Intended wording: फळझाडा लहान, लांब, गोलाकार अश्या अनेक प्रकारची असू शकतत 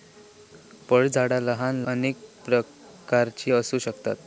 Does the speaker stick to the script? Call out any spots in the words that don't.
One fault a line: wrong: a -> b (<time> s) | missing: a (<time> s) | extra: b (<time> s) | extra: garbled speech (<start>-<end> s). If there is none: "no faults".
missing: लांब गोलाकार अश्या (1.8 s)